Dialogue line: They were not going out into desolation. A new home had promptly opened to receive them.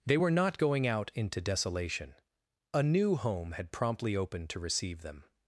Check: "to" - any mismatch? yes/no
no